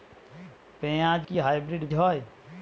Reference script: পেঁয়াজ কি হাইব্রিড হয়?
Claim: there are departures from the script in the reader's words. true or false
false